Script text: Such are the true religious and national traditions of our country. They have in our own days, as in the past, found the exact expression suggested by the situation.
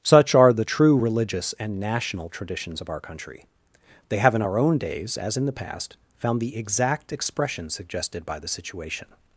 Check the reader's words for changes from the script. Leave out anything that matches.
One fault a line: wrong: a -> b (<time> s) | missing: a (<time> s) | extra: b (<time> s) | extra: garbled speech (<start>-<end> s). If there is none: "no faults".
no faults